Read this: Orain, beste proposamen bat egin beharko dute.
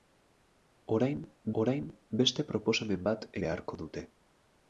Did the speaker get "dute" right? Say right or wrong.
right